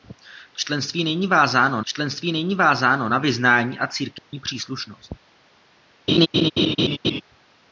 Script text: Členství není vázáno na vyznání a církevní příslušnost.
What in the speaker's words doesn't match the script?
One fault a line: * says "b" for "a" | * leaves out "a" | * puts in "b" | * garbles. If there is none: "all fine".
* puts in "členství není vázáno"